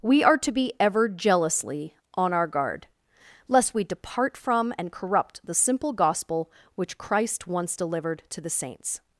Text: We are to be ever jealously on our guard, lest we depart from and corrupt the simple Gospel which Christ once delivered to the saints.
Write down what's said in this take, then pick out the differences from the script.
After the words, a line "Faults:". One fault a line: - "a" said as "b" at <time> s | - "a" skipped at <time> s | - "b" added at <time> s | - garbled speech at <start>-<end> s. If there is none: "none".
We are to be ever jealously on our guard, lest we depart from and corrupt the simple Gospel which Christ once delivered to the saints.
Faults:
none